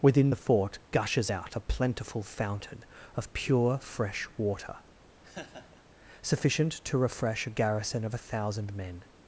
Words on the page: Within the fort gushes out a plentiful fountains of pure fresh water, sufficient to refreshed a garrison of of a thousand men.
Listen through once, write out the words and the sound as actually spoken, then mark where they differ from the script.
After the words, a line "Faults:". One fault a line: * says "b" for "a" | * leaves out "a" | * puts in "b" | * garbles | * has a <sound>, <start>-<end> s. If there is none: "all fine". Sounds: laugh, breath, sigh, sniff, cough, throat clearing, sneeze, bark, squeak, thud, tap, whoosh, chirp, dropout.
Within the fort gushes out a plentiful fountain of pure fresh water, sufficient to refresh a garrison of a thousand men.
Faults:
* says "fountain" for "fountains"
* has a laugh, 5.2-5.8 s
* says "refresh" for "refreshed"
* leaves out "of"